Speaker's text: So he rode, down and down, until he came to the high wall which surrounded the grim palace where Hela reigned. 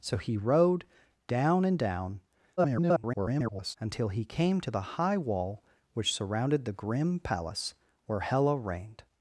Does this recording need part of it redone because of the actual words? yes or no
yes